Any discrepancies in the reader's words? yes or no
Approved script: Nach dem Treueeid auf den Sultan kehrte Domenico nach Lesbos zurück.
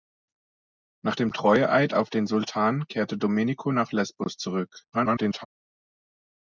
yes